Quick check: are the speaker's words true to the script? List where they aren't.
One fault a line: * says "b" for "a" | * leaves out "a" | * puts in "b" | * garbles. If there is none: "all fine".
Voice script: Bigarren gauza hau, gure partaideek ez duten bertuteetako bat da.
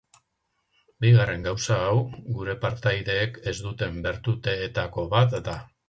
all fine